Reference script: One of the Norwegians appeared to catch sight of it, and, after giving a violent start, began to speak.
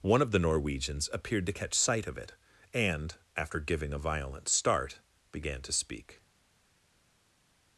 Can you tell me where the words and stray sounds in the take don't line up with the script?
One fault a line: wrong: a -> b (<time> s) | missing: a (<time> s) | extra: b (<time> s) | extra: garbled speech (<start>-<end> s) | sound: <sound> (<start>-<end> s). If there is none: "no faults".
no faults